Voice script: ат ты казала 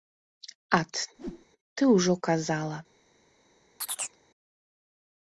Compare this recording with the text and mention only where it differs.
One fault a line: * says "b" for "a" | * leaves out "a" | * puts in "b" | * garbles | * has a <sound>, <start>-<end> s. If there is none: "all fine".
* has a whoosh, 1.2-1.5 s
* puts in "ўжо"
* has a chirp, 3.8-4.2 s